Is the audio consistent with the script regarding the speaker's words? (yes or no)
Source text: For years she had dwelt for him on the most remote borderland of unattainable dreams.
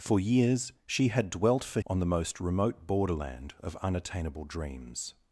no